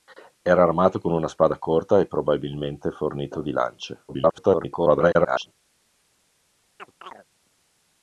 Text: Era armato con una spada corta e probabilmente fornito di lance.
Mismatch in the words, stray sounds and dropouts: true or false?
true